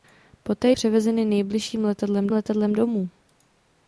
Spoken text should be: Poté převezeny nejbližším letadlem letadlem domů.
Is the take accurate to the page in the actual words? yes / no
yes